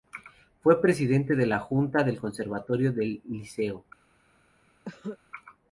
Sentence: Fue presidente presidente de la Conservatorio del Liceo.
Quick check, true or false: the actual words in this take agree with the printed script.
false